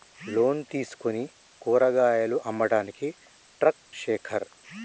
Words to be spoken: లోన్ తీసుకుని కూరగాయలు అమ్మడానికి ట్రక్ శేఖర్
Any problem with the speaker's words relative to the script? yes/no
no